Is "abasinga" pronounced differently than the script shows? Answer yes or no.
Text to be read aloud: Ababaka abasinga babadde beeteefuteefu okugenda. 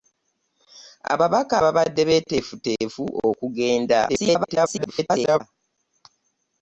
yes